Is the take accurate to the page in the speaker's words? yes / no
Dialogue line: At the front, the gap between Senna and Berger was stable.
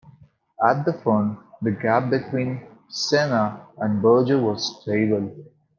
yes